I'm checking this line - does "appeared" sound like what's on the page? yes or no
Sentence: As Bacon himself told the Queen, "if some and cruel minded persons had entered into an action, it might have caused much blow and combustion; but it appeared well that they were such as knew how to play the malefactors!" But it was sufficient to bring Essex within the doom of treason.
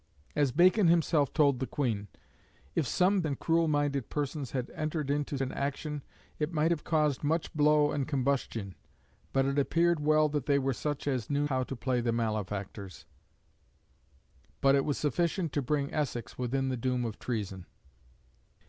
yes